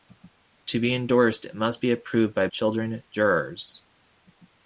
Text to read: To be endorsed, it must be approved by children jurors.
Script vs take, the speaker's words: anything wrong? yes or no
no